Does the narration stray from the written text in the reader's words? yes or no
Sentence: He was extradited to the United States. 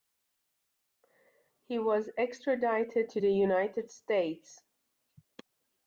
no